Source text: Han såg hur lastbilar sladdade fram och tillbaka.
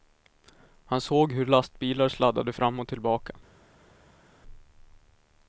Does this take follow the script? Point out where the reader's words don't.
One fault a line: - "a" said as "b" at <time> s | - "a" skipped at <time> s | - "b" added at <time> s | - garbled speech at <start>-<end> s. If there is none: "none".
none